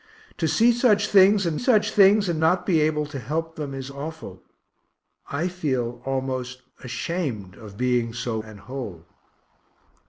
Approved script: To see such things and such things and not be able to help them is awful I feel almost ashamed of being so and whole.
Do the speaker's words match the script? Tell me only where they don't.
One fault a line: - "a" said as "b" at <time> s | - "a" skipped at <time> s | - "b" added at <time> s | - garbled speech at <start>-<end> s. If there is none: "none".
none